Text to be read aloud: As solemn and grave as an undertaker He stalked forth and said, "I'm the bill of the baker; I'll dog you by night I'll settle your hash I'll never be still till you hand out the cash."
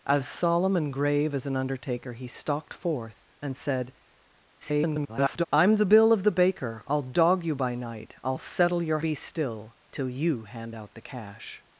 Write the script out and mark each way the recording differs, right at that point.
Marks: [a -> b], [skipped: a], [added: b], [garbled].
As solemn and grave as an undertaker He stalked forth and said, [garbled] "I'm the bill of the baker; I'll dog you by night I'll settle your [skipped: hash I'll never] be still till you hand out the cash."